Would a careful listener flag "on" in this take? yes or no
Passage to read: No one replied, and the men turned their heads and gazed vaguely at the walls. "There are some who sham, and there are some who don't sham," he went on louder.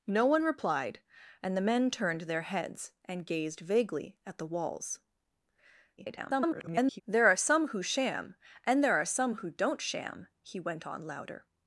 no